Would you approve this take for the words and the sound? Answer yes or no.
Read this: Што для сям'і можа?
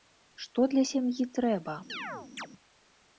no